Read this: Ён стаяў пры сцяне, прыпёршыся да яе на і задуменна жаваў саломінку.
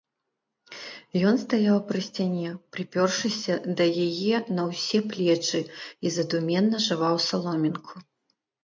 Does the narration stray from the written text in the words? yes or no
yes